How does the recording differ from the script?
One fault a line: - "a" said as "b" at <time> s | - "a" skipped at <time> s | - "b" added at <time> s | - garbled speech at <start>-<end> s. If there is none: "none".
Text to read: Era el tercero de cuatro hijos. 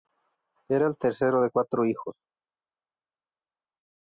none